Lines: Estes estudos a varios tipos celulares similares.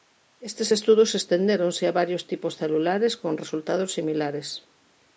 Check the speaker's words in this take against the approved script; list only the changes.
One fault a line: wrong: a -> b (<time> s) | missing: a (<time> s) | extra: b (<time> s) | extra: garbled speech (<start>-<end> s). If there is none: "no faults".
extra: estendéronse (1.2 s)
extra: con resultados (3.2 s)